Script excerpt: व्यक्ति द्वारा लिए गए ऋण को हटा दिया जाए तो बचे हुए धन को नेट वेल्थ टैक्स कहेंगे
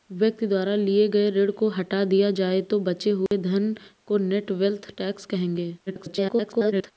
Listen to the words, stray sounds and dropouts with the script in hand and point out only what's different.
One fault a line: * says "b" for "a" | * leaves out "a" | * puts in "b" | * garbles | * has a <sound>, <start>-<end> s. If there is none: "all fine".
* has a dropout, 3.3-3.3 s
* garbles